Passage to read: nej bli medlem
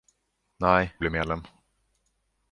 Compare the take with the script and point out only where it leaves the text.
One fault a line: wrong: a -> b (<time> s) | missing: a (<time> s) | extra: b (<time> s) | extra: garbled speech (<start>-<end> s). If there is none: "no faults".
no faults